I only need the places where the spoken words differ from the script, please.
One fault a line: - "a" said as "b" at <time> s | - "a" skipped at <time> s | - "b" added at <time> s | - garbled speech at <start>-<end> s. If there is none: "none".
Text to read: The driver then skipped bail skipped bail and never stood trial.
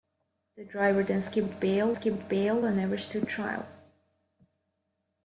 none